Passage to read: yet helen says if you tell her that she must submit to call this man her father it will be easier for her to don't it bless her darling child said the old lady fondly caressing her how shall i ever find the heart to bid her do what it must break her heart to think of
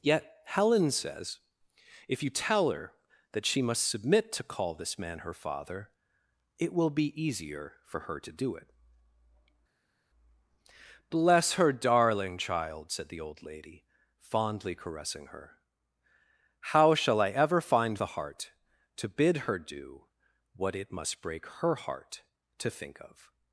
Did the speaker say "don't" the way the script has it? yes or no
no